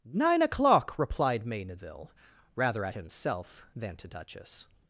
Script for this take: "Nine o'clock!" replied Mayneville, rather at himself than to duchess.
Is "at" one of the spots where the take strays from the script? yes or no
no